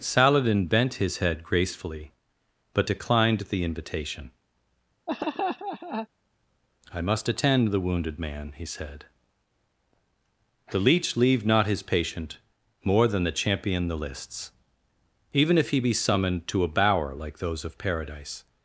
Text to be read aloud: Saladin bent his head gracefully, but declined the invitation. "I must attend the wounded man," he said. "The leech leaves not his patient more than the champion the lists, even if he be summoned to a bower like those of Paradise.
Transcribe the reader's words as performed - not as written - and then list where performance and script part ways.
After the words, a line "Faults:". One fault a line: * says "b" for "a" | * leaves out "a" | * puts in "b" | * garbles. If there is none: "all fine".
Saladin bent his head gracefully, but declined the invitation. "I must attend the wounded man," he said. "The leech leave not his patient more than the champion the lists, even if he be summoned to a bower like those of Paradise.
Faults:
* says "leave" for "leaves"